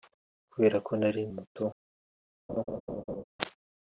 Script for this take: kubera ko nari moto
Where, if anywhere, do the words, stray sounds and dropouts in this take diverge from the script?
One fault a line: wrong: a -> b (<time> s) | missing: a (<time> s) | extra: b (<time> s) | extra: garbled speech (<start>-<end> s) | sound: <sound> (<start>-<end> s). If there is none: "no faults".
sound: laugh (2.5-3.2 s)